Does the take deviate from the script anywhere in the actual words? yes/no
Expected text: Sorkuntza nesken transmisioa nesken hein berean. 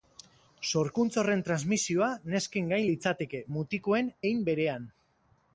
yes